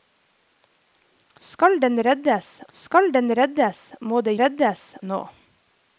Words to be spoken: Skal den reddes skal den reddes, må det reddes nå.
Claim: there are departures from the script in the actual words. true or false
false